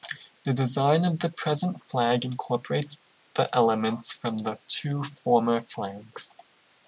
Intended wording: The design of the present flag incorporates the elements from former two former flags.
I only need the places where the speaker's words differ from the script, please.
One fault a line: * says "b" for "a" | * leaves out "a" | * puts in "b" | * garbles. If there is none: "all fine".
* says "the" for "former"